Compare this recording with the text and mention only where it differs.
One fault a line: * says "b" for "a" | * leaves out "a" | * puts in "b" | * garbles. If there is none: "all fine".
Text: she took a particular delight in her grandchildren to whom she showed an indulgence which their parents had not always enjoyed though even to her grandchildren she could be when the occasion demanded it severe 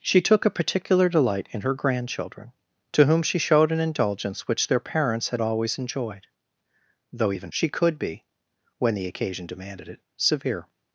* leaves out "not"
* leaves out "to her grandchildren"